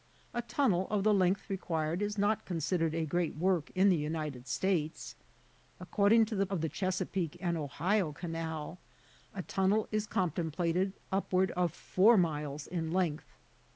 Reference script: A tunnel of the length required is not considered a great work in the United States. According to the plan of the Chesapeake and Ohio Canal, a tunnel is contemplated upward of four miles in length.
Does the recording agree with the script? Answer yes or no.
no